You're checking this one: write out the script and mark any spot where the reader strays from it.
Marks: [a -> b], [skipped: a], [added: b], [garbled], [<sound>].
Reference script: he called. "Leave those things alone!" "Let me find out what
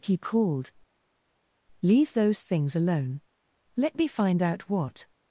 he called. "Leave those things alone!" "Let me find out what